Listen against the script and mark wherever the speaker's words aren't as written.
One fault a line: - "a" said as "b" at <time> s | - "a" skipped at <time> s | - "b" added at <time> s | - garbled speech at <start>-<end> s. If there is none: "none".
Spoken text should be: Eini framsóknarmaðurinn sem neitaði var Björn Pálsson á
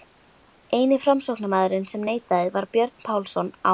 none